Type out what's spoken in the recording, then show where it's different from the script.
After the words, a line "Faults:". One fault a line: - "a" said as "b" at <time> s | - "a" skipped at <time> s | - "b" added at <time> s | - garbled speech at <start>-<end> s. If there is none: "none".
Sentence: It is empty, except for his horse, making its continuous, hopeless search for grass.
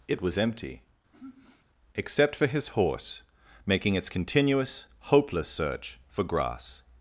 It was empty, except for his horse, making its continuous, hopeless search for grass.
Faults:
- "is" said as "was" at 0.2 s